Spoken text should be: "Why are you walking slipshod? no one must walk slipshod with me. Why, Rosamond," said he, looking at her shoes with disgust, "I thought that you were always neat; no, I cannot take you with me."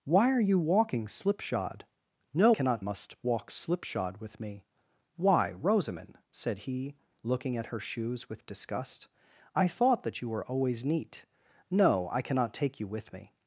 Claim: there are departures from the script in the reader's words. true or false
true